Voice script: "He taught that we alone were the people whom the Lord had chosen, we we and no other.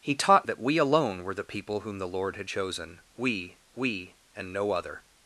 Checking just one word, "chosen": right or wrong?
right